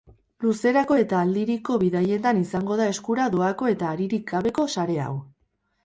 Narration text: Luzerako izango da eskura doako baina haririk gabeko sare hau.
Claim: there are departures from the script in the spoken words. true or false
true